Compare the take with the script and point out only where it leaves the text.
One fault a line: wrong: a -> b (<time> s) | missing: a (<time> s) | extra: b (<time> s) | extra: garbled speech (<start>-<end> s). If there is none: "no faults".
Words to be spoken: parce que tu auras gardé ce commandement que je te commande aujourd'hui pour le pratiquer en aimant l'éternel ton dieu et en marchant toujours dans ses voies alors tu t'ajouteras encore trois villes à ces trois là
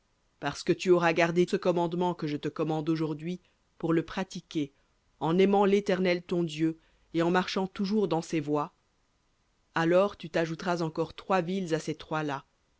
no faults